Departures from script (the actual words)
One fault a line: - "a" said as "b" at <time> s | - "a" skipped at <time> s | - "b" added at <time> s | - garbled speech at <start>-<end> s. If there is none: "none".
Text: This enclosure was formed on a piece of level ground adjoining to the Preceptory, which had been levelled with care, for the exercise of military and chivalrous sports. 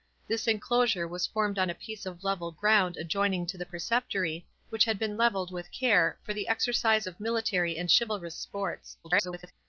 - garbled speech at 9.0-9.5 s